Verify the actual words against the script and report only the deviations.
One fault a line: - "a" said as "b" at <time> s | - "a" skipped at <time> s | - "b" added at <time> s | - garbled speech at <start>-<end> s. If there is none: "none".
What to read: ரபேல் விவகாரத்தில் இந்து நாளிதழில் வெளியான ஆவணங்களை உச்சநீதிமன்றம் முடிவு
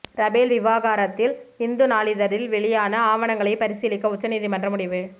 - "பரிசீலிக்க" added at 3.6 s